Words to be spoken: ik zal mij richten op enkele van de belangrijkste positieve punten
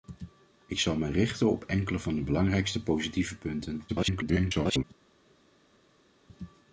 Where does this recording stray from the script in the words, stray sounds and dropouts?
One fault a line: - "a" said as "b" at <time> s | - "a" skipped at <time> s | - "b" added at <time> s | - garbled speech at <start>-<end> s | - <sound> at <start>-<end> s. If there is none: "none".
- garbled speech at 3.9-4.8 s